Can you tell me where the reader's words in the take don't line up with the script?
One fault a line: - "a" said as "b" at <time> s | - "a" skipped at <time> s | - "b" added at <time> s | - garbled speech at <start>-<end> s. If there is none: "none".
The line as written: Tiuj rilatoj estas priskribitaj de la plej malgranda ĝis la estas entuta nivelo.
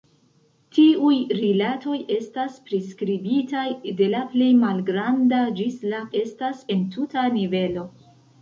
none